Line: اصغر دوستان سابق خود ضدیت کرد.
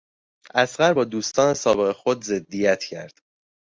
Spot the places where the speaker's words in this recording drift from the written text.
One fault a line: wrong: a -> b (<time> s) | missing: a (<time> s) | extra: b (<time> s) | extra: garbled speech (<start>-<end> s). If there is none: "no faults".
extra: با (0.9 s)